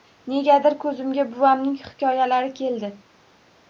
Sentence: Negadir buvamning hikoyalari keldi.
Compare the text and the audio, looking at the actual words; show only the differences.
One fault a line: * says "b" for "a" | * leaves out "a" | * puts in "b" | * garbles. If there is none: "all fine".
* puts in "ko'zimga"